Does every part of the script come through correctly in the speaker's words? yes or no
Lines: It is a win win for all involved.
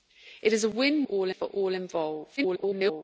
no